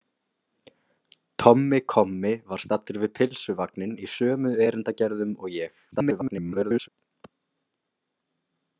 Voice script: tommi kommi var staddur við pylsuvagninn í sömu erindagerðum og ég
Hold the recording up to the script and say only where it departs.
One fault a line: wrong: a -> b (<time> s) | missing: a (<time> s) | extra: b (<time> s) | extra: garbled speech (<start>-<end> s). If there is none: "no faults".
extra: garbled speech (5.9-6.9 s)